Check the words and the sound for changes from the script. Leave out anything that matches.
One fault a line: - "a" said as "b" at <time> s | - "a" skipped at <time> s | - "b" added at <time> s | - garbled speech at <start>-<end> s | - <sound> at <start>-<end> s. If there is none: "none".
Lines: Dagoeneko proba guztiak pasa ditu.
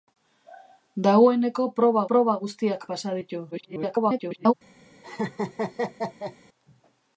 - "proba" added at 2.1 s
- garbled speech at 3.5-4.5 s
- laugh at 5.0-6.4 s